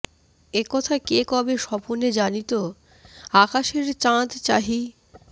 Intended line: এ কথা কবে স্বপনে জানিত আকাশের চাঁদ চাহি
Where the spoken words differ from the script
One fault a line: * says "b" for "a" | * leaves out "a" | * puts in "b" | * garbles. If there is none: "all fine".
* puts in "কে"